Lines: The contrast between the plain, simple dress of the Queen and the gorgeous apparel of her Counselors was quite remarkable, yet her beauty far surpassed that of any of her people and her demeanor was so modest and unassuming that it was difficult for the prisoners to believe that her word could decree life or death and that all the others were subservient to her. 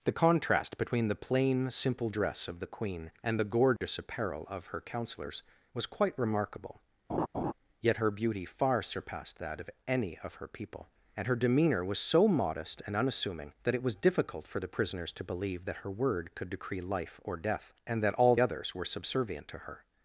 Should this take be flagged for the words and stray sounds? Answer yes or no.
yes